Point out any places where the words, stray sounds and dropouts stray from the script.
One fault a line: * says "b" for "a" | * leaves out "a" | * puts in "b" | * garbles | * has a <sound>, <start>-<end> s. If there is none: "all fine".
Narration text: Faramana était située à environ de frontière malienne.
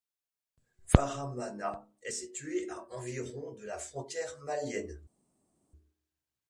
* says "est" for "était"
* puts in "la"